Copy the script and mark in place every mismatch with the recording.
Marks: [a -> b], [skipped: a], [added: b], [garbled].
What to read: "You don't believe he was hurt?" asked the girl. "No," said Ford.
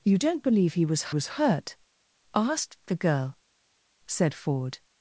"You don't believe he was [added: was] hurt?" asked the girl. [skipped: "No,"] said Ford.